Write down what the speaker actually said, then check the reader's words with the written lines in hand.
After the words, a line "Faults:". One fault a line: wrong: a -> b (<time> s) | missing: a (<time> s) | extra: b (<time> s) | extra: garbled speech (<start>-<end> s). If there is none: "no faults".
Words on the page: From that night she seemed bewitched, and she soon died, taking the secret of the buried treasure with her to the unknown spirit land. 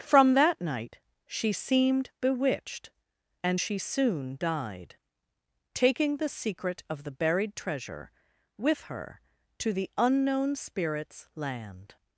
From that night she seemed bewitched, and she soon died, taking the secret of the buried treasure with her to the unknown spirits land.
Faults:
wrong: spirit -> spirits (10.6 s)